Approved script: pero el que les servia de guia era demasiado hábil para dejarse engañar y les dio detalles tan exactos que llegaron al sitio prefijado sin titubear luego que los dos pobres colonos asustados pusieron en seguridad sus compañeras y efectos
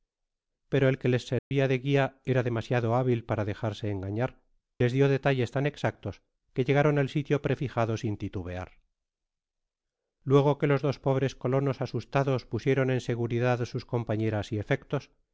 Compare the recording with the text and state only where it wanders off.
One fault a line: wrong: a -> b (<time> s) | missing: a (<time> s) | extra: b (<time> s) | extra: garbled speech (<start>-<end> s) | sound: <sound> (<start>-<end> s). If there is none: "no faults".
sound: dropout (1.4-1.5 s)
missing: y (4.4 s)